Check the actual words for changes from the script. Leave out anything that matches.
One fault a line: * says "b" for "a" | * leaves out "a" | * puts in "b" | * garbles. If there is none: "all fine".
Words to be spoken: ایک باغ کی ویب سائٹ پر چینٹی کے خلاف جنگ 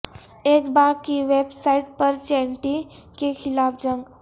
all fine